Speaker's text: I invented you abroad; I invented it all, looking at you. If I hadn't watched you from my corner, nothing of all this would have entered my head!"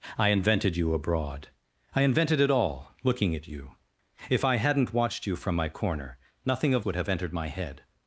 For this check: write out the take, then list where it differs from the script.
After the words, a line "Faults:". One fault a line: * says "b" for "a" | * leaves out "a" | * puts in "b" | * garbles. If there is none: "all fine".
I invented you abroad; I invented it all, looking at you. If I hadn't watched you from my corner, nothing of would have entered my head!"
Faults:
* leaves out "all this"